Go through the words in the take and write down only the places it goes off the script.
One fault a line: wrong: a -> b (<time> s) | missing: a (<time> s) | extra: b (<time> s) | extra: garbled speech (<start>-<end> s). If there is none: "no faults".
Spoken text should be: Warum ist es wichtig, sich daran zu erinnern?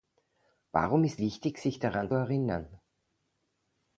missing: es (1.2 s)
missing: zu (2.1 s)